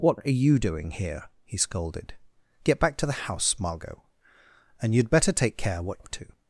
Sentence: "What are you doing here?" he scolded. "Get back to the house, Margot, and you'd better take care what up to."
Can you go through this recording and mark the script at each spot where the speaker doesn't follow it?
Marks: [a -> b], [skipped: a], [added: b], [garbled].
"What are you doing here?" he scolded. "Get back to the house, Margot, and you'd better take care what up to."